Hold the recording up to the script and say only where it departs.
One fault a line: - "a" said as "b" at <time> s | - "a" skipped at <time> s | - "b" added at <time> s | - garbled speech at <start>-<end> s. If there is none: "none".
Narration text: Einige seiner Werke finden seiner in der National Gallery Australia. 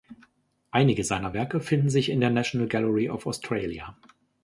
- "seiner" said as "sich" at 1.9 s
- "of" added at 3.1 s